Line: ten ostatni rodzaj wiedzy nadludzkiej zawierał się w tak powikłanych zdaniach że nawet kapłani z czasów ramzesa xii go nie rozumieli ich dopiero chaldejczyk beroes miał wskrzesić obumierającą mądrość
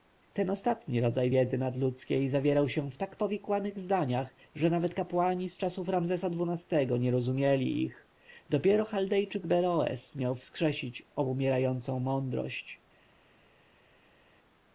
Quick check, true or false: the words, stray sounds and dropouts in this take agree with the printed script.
true